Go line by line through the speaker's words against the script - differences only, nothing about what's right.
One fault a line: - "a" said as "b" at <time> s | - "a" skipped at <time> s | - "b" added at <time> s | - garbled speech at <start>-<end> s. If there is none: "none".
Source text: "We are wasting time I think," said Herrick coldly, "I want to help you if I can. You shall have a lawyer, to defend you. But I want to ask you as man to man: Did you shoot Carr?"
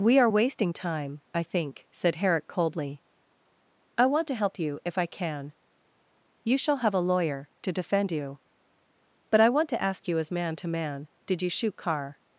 none